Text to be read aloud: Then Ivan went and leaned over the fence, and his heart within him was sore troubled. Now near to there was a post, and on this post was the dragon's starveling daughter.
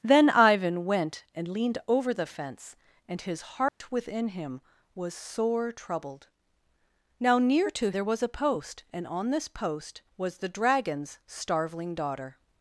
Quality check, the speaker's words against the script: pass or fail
pass